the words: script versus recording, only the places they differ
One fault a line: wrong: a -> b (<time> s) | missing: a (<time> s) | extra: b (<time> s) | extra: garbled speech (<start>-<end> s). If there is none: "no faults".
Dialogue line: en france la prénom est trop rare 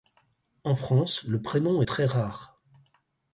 wrong: la -> le (1.2 s)
wrong: trop -> très (1.9 s)